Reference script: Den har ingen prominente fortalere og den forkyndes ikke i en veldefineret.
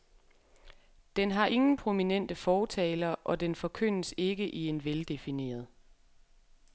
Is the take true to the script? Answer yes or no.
yes